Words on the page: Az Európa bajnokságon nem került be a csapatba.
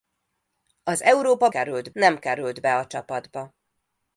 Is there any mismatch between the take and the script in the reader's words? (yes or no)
yes